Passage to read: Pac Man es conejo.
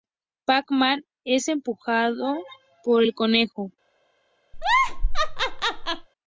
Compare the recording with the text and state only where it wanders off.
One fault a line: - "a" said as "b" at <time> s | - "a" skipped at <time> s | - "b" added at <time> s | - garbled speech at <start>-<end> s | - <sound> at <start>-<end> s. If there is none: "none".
- "empujado por el" added at 1.5 s
- laugh at 4.5-6.1 s